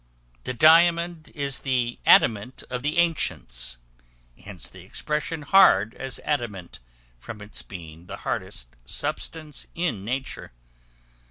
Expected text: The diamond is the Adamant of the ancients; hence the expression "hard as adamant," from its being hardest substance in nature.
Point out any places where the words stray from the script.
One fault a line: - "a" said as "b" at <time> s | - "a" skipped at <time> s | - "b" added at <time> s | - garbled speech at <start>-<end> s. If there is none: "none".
- "the" added at 8.0 s